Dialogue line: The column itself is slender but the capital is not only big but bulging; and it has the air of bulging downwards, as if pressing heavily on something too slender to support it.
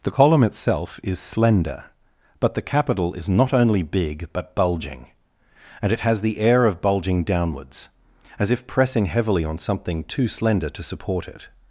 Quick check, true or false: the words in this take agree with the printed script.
true